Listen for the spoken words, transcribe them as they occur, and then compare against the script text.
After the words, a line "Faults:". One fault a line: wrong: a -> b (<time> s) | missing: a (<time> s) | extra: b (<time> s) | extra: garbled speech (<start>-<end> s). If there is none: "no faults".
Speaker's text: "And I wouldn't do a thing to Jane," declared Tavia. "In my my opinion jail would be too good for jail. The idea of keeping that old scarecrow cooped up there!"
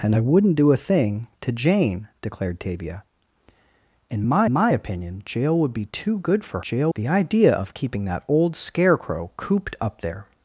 "And I wouldn't do a thing to Jane," declared Tavia. "In my my opinion jail would be too good for jail. The idea of keeping that old scarecrow cooped up there!"
Faults:
no faults